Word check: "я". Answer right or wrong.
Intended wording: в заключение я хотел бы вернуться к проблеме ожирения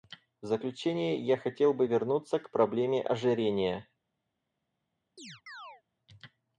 right